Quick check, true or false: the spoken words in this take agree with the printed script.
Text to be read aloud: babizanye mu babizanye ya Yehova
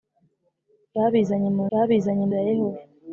true